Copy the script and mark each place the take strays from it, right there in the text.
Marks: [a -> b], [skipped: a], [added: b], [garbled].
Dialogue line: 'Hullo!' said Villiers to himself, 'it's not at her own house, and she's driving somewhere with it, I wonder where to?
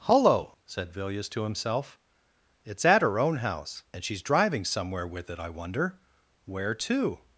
'Hullo!' said Villiers to himself, 'it's [skipped: not] at her own house, and she's driving somewhere with it, I wonder where to?